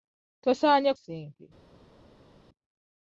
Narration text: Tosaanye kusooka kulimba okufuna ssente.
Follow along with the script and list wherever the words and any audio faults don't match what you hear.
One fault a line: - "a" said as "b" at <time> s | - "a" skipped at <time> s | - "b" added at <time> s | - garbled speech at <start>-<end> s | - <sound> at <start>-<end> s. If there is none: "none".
- "kusooka kulimba okufuna" skipped at 0.9 s